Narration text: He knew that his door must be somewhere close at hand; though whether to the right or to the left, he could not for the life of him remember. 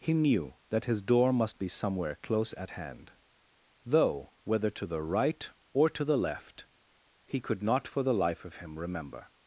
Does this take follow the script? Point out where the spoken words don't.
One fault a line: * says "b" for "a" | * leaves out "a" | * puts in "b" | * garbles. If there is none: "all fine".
all fine